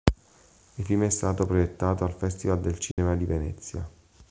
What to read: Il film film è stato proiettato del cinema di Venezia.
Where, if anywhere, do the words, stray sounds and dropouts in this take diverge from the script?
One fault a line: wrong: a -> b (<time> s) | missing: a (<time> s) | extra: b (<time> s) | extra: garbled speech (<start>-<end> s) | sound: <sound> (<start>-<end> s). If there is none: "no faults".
missing: film (1.0 s)
extra: al Festival (2.0 s)
sound: dropout (2.9-3.0 s)